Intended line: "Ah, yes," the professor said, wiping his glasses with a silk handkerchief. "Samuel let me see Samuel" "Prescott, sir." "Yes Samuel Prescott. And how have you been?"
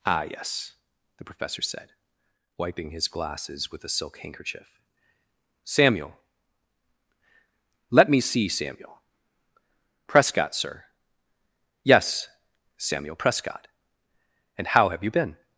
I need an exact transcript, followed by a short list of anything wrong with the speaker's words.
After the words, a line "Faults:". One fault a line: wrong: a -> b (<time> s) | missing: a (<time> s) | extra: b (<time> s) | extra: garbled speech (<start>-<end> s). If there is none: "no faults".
"Ah, yes," the professor said, wiping his glasses with a silk handkerchief. "Samuel let me see Samuel" "Prescott, sir." "Yes Samuel Prescott. And how have you been?"
Faults:
no faults